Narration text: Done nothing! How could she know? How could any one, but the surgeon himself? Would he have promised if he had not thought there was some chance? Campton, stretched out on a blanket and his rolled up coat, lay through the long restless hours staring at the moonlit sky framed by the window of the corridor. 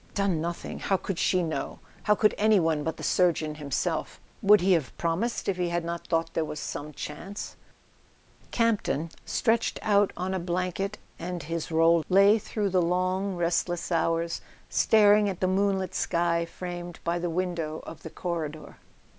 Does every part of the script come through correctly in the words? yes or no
no